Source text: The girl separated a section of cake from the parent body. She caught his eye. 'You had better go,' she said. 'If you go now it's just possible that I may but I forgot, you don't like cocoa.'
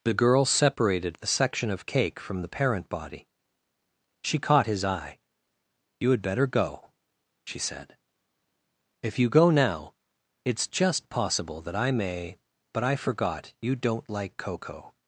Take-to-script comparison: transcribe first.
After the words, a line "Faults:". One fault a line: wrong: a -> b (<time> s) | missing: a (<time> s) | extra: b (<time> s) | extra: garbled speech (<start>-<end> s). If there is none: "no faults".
The girl separated a section of cake from the parent body. She caught his eye. 'You had better go,' she said. 'If you go now it's just possible that I may but I forgot, you don't like cocoa.'
Faults:
no faults